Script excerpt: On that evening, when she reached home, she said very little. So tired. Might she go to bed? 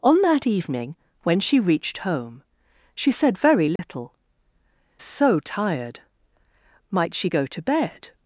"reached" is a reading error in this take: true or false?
false